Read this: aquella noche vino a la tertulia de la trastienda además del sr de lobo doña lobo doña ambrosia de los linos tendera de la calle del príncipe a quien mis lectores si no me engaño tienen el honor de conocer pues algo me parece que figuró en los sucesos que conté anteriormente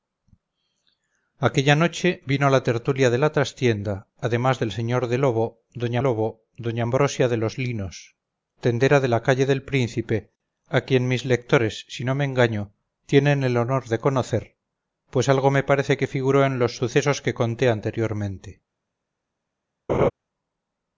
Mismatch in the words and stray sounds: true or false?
true